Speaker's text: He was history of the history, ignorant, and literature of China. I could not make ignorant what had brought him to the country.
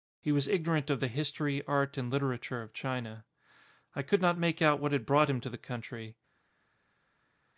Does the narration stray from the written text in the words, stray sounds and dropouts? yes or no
yes